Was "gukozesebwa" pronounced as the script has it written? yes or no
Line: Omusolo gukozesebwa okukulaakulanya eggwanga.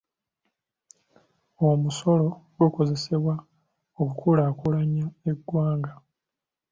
yes